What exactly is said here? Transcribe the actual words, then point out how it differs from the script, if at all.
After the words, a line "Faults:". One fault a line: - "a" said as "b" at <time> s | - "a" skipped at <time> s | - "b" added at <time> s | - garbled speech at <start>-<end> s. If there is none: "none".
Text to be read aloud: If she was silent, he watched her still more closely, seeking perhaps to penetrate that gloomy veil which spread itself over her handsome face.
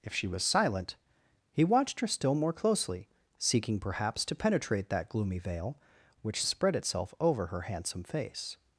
If she was silent, he watched her still more closely, seeking perhaps to penetrate that gloomy veil which spread itself over her handsome face.
Faults:
none